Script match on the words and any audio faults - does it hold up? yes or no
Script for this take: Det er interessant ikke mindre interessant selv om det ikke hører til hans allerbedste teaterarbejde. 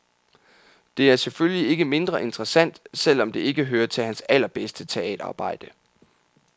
no